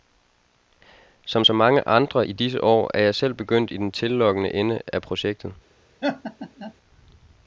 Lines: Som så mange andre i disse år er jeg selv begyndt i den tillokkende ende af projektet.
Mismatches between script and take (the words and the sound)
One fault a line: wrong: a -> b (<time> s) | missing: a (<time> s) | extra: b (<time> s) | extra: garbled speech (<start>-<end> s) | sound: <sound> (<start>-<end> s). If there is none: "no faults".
sound: laugh (6.0-6.7 s)